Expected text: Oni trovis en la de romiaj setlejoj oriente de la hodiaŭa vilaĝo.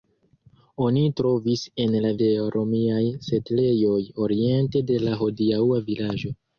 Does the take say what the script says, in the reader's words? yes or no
yes